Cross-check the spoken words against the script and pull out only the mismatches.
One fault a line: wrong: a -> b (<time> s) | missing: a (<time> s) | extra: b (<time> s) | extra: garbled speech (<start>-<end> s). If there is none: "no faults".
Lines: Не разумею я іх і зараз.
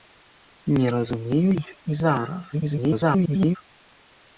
missing: я (1.5 s)
extra: garbled speech (2.5-3.6 s)